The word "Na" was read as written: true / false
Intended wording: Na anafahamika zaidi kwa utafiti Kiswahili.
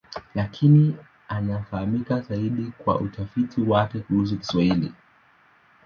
false